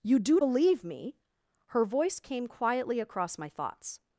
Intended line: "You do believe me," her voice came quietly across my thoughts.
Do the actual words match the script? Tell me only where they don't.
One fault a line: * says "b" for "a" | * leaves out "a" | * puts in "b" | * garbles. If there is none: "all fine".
all fine